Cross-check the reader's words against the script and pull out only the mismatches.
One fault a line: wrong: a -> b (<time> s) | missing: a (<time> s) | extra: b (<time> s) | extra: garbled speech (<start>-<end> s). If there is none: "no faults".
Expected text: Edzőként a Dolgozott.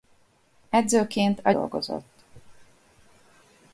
no faults